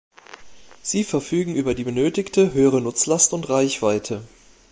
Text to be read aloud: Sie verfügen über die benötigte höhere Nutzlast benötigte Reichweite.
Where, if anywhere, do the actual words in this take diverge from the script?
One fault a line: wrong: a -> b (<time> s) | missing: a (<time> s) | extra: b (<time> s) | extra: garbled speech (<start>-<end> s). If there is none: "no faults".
wrong: benötigte -> und (3.3 s)